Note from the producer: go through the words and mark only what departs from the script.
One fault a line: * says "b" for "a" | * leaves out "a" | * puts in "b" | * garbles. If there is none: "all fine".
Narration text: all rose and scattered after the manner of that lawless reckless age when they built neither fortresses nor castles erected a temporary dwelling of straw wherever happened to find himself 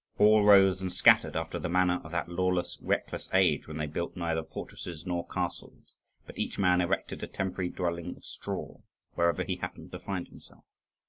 * puts in "but each man"
* puts in "he"